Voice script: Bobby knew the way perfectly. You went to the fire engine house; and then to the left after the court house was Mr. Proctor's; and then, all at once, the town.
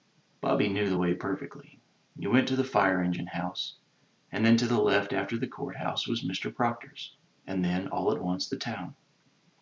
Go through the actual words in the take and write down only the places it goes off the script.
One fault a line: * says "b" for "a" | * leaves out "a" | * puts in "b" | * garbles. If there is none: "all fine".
all fine